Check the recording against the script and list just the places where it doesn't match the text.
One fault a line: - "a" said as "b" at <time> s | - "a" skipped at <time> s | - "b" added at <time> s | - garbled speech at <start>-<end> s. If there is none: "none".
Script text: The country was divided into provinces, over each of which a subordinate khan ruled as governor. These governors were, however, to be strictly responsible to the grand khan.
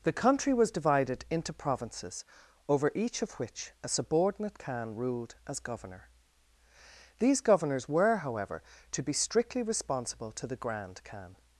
none